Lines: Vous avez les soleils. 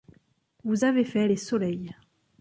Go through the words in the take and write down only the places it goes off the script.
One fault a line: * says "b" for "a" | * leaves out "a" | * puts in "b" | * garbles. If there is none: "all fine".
* puts in "fait"